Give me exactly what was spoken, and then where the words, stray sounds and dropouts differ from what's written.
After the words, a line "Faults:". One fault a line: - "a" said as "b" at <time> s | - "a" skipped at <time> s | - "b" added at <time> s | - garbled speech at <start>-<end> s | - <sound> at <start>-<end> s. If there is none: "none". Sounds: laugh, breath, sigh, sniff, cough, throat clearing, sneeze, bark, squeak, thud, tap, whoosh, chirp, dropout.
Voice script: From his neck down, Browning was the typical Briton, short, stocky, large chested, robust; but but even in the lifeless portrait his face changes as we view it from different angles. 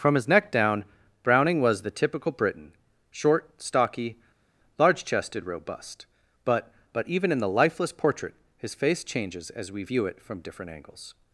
From his neck down, Browning was the typical Briton, short, stocky, large chested, robust; but but even in the lifeless portrait his face changes as we view it from different angles.
Faults:
none